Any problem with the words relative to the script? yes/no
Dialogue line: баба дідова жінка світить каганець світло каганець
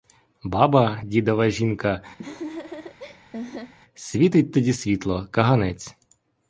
yes